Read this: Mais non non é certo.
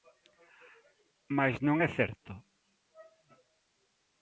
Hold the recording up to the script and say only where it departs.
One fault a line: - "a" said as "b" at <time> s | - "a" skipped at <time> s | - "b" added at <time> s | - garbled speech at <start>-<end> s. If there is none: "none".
- "non" skipped at 1.8 s